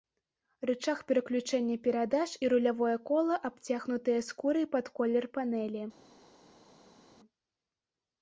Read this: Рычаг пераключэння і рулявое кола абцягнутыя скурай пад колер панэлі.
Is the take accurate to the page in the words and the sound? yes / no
no